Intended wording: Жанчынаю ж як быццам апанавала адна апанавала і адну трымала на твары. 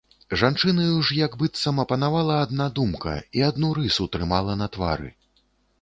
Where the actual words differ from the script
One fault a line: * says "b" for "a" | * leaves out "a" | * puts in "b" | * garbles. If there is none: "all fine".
* says "думка" for "апанавала"
* puts in "рысу"